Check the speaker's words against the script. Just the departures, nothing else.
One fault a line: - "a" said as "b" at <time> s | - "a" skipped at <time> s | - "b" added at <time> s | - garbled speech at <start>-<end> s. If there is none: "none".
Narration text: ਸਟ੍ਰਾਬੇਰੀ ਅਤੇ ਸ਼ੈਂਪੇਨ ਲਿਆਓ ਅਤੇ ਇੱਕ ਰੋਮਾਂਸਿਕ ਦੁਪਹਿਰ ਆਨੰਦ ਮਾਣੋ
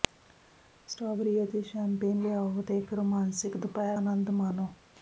none